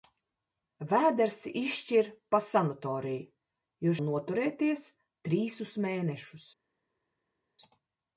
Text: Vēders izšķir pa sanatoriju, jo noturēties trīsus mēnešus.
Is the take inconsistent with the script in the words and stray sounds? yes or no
no